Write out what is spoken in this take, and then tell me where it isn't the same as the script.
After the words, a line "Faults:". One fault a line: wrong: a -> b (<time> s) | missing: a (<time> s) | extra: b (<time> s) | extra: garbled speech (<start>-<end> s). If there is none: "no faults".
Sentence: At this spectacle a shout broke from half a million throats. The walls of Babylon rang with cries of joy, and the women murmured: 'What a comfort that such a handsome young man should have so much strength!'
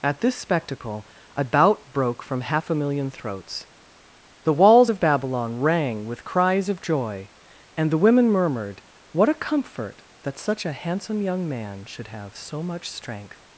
At this spectacle a bout broke from half a million throats. The walls of Babylon rang with cries of joy, and the women murmured: 'What a comfort that such a handsome young man should have so much strength!'
Faults:
wrong: shout -> bout (1.4 s)